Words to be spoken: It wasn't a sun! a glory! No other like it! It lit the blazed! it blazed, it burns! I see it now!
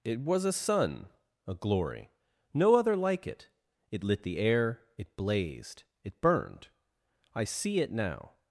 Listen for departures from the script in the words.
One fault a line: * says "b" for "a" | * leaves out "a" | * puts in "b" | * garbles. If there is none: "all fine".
* says "was" for "wasn't"
* says "air" for "blazed"
* says "burned" for "burns"